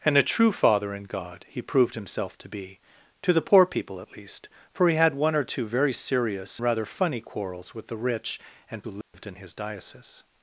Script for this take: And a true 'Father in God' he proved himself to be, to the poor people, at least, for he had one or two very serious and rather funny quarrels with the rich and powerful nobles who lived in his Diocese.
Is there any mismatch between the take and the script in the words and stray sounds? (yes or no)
yes